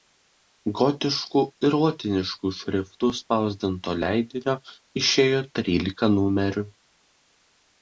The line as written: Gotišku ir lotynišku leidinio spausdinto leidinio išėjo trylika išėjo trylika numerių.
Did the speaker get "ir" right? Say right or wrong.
right